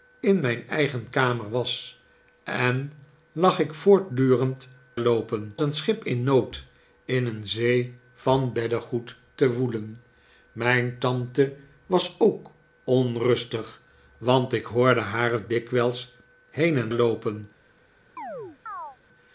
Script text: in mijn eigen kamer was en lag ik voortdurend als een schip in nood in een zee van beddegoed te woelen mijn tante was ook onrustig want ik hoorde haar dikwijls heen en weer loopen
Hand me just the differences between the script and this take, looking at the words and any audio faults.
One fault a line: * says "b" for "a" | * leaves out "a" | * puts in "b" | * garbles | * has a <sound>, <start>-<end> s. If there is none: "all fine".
* says "loopen" for "als"
* leaves out "weer"
* has a chirp, 18.2-19.0 s